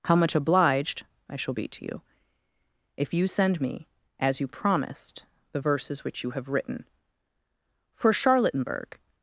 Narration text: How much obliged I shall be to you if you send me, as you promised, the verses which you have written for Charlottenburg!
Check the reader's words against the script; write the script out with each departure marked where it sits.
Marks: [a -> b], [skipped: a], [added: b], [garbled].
How much obliged I shall be to you if you send me, as you promised, the verses which you have written for Charlottenburg!